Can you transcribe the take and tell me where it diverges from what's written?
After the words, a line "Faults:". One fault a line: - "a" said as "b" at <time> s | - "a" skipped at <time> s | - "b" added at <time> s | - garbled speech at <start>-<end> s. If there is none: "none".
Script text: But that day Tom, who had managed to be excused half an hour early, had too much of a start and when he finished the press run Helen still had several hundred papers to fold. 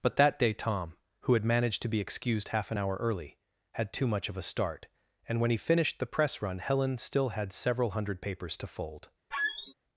But that day Tom, who had managed to be excused half an hour early, had too much of a start and when he finished the press run Helen still had several hundred papers to fold.
Faults:
none